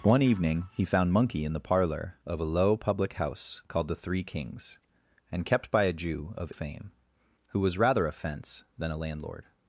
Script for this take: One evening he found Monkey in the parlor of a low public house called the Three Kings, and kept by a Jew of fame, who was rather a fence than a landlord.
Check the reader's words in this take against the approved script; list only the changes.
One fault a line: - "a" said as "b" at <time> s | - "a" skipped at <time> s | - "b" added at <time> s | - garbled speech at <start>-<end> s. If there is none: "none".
none